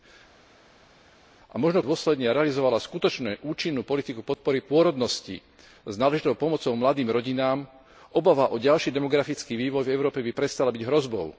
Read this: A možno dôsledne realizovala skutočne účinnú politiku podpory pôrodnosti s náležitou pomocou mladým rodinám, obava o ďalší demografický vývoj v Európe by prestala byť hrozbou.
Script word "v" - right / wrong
right